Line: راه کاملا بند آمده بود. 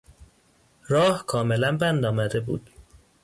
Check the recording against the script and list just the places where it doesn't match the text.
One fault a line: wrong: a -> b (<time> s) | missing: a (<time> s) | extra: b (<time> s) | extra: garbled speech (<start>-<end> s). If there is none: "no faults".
no faults